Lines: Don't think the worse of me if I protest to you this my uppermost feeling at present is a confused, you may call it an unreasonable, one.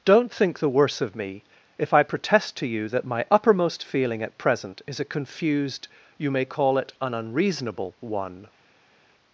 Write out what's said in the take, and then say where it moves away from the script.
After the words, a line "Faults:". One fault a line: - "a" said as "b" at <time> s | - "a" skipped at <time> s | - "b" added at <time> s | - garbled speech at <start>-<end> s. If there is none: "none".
Don't think the worse of me if I protest to you that my uppermost feeling at present is a confused, you may call it an unreasonable, one.
Faults:
- "this" said as "that" at 2.9 s